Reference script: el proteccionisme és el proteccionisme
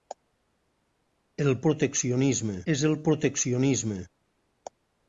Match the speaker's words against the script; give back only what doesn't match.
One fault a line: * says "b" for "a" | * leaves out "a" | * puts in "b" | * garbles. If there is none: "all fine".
all fine